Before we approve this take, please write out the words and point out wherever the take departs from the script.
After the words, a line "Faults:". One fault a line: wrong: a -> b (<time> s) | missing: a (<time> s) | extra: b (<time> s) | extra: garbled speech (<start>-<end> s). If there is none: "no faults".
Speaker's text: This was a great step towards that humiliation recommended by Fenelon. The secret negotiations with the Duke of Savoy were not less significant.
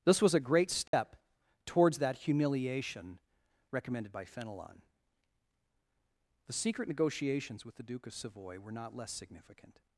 This was a great step towards that humiliation recommended by Fenelon. The secret negotiations with the Duke of Savoy were not less significant.
Faults:
no faults